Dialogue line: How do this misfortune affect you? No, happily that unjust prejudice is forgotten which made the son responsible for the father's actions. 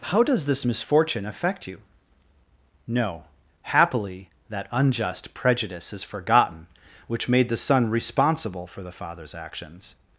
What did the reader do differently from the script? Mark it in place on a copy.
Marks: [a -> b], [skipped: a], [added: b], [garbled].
How [do -> does] this misfortune affect you? No, happily that unjust prejudice is forgotten which made the son responsible for the father's actions.